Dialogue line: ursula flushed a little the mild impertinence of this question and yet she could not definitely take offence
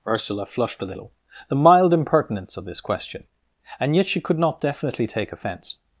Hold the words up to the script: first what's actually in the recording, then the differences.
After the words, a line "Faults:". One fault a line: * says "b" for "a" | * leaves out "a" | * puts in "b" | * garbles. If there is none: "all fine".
ursula flushed a little the mild impertinence of this question and yet she could not definitely take offence
Faults:
all fine